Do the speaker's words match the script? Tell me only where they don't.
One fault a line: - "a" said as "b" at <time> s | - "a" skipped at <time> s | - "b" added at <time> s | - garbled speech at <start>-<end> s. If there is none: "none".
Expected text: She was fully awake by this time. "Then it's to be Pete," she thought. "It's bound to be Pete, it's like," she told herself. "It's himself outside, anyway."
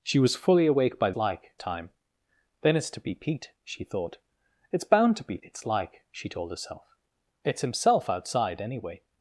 - "this" said as "like" at 1.1 s
- "Pete" skipped at 5.4 s